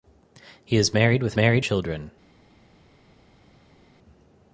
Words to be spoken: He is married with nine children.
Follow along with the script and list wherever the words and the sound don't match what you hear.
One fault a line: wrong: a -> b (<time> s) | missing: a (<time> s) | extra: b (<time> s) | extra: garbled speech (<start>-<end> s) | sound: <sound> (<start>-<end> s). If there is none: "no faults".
wrong: nine -> married (1.4 s)